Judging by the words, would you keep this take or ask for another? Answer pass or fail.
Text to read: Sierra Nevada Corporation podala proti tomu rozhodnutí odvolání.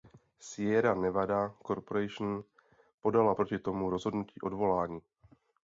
pass